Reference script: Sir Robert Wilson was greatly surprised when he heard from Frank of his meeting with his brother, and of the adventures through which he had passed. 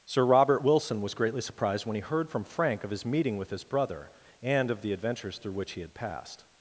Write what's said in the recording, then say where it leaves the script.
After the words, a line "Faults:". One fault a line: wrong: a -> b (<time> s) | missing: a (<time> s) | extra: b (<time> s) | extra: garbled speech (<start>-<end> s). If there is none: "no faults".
Sir Robert Wilson was greatly surprised when he heard from Frank of his meeting with his brother, and of the adventures through which he had passed.
Faults:
no faults